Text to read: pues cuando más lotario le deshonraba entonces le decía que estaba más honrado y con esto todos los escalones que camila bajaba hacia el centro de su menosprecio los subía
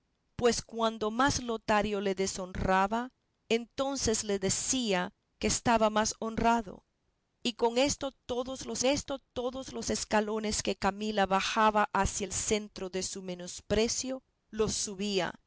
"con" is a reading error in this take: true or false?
false